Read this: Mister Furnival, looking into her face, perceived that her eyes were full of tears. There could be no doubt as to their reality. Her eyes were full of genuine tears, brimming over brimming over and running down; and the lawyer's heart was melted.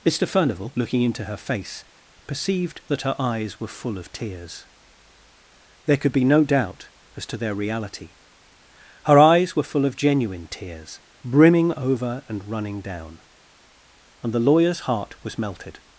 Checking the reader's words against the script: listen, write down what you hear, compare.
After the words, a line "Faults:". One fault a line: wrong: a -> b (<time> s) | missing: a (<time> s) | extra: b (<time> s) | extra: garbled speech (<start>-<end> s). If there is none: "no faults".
Mister Furnival, looking into her face, perceived that her eyes were full of tears. There could be no doubt as to their reality. Her eyes were full of genuine tears, brimming over and running down; and the lawyer's heart was melted.
Faults:
missing: brimming over (12.2 s)